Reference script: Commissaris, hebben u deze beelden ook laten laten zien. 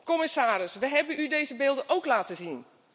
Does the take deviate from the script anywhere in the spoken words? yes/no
yes